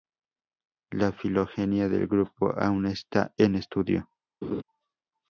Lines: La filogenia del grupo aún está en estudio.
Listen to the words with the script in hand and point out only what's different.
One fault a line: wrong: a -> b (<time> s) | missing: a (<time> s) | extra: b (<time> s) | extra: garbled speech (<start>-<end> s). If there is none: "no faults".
no faults